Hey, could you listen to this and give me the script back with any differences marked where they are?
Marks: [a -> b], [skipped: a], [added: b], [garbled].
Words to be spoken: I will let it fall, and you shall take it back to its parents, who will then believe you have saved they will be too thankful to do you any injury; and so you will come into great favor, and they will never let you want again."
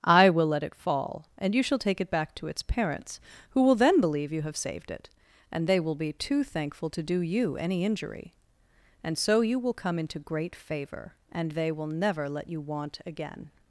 I will let it fall, and you shall take it back to its parents, who will then believe you have saved [added: it and] they will be too thankful to do you any injury; and so you will come into great favor, and they will never let you want again."